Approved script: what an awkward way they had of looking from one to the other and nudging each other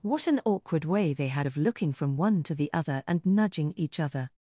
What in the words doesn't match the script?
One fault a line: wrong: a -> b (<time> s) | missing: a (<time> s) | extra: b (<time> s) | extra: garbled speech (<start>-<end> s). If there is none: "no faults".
no faults